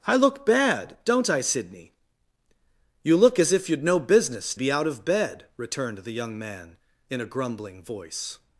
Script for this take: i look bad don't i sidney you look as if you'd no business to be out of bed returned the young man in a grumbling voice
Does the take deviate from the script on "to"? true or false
true